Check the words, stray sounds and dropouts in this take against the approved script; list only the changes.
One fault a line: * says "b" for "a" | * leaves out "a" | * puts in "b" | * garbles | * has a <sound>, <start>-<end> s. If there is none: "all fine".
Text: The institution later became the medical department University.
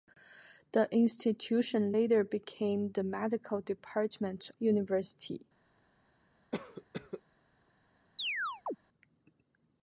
* has a cough, 6.5-7.2 s
* has a chirp, 8.2-8.8 s